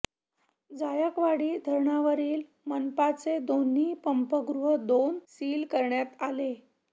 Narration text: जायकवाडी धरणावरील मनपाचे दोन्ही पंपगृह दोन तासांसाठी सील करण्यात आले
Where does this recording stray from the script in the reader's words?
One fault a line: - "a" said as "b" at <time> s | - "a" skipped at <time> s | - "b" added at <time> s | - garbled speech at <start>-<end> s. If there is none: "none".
- "तासांसाठी" skipped at 5.2 s